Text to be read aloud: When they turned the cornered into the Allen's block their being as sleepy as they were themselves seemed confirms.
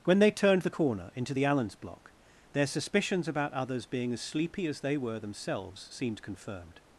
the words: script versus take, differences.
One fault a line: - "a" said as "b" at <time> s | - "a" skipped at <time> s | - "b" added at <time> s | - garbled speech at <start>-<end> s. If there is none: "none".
- "cornered" said as "corner" at 0.7 s
- "suspicions about others" added at 2.7 s
- "confirms" said as "confirmed" at 6.2 s